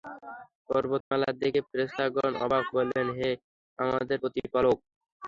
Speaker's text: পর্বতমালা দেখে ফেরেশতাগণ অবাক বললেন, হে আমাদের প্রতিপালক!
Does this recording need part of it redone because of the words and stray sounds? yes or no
yes